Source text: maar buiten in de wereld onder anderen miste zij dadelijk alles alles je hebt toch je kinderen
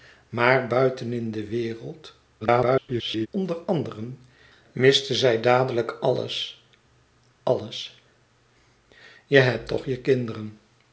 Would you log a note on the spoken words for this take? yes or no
yes